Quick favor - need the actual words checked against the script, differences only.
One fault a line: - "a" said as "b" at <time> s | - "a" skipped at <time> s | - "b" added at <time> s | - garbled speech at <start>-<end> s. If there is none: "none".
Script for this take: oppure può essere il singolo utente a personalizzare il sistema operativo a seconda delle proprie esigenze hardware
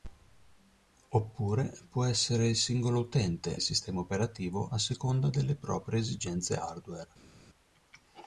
- "a personalizzare" skipped at 3.5 s